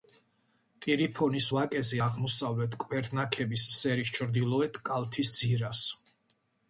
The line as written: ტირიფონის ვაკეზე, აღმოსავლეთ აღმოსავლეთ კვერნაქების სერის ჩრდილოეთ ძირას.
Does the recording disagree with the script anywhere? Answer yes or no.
yes